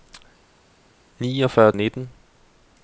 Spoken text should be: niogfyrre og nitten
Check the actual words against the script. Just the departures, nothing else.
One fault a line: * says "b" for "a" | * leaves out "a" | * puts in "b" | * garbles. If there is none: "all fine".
all fine